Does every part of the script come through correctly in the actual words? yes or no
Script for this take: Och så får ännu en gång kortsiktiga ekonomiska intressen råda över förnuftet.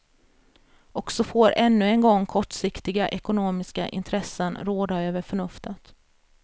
yes